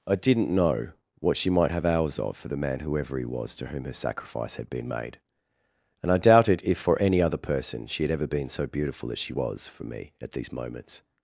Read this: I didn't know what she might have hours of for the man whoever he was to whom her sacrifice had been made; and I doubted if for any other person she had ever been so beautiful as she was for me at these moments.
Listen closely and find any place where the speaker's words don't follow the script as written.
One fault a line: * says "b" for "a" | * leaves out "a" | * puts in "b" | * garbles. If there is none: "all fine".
all fine